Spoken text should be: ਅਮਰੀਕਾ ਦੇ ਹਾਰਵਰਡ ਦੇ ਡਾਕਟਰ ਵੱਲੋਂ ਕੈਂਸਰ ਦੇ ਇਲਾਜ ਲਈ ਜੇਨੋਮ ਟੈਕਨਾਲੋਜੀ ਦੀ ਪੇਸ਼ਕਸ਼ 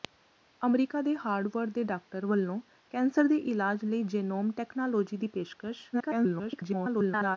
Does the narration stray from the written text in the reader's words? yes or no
yes